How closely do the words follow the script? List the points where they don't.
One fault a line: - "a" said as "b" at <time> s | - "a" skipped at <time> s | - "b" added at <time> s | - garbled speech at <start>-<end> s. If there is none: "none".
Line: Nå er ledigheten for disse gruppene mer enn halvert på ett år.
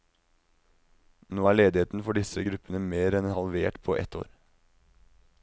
none